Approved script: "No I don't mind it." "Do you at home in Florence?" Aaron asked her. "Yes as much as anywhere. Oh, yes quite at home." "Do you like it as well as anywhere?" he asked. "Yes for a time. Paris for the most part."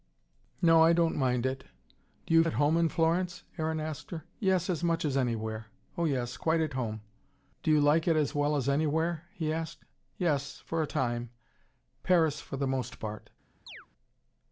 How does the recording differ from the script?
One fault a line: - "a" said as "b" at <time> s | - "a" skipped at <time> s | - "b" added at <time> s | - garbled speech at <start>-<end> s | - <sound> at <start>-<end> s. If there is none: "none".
- chirp at 13.7-13.9 s